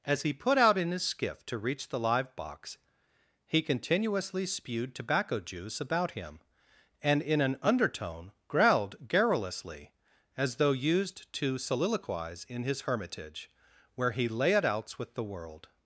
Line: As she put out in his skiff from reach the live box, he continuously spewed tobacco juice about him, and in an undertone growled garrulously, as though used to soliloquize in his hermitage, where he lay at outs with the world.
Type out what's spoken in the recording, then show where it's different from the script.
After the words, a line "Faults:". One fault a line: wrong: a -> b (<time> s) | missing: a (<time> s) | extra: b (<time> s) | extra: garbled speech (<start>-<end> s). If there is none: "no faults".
As he put out in his skiff to reach the live box, he continuously spewed tobacco juice about him, and in an undertone growled garrulously, as though used to soliloquize in his hermitage, where he lay at outs with the world.
Faults:
wrong: she -> he (0.2 s)
wrong: from -> to (1.4 s)